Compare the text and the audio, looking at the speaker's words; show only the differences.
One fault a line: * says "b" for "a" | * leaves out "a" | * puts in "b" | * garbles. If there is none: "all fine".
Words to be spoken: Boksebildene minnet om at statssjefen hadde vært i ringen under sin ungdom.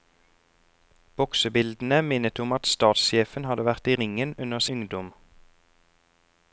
* leaves out "sin"